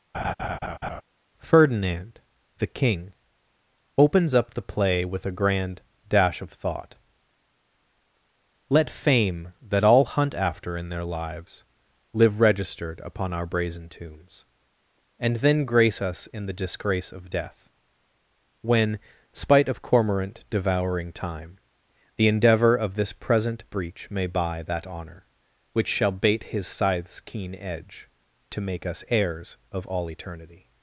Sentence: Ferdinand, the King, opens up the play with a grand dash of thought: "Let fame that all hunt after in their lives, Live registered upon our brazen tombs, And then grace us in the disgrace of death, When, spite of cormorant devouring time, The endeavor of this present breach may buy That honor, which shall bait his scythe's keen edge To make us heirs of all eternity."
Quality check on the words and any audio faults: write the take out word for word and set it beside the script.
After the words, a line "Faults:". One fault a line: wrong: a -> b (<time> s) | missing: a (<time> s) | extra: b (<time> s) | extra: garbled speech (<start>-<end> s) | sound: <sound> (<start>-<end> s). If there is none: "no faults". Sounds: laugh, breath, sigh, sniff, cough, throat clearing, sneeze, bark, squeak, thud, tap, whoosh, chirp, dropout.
Ferdinand, the King, opens up the play with a grand dash of thought: "Let fame that all hunt after in their lives, Live registered upon our brazen tombs, And then grace us in the disgrace of death, When, spite of cormorant devouring time, The endeavor of this present breach may buy That honor, which shall bait his scythe's keen edge To make us heirs of all eternity."
Faults:
sound: laugh (0.1-1.0 s)